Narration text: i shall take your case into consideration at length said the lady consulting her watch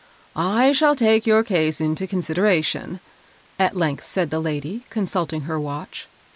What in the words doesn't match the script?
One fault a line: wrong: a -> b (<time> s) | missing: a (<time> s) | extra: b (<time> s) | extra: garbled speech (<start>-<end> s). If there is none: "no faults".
no faults